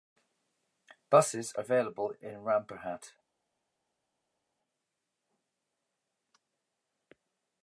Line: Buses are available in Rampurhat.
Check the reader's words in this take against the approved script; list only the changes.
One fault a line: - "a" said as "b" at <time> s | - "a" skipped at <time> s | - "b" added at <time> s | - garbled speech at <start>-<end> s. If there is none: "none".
- "are" skipped at 1.5 s